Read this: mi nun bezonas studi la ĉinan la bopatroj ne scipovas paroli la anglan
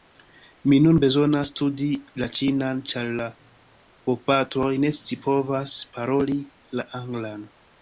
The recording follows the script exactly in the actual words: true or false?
false